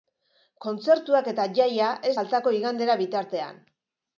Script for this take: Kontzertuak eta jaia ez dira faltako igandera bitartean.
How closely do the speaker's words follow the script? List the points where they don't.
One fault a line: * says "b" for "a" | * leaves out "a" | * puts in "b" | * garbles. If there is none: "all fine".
* leaves out "dira"